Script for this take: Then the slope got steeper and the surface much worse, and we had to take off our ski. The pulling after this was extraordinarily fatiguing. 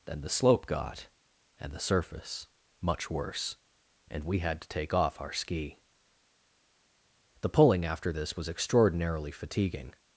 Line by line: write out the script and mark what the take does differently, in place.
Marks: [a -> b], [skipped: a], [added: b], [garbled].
Then the slope got [skipped: steeper] and the surface much worse, and we had to take off our ski. The pulling after this was extraordinarily fatiguing.